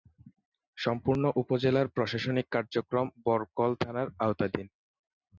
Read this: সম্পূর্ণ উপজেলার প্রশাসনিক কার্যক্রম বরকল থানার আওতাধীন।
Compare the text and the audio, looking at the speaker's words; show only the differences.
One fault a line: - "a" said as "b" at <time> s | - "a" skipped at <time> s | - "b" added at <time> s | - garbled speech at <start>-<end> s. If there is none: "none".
none